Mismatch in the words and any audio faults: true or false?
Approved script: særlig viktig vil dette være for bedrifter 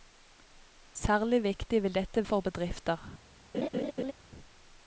true